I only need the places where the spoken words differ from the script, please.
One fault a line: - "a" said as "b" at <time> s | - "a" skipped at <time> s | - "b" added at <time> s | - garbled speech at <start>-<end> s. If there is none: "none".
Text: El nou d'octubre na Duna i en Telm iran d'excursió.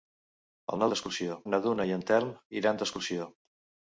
- "d'octubre" said as "d'excursió" at 0.9 s